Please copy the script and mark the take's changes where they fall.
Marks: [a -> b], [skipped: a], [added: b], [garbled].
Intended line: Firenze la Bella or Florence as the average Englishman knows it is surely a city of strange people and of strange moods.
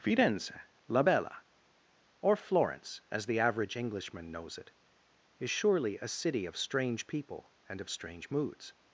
Firenze la Bella or Florence as the average Englishman knows it is surely a city of strange people and of strange moods.